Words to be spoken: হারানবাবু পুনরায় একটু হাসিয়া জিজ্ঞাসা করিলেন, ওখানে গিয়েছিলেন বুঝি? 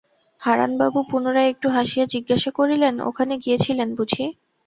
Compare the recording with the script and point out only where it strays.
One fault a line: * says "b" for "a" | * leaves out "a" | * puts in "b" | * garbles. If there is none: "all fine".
all fine